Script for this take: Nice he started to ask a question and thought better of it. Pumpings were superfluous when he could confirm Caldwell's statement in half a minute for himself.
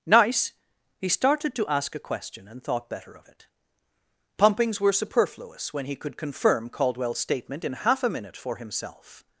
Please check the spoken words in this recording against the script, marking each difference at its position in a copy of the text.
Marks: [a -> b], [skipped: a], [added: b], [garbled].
Nice he started to ask a question and thought better of it. Pumpings were superfluous when he could confirm Caldwell's statement in half a minute for himself.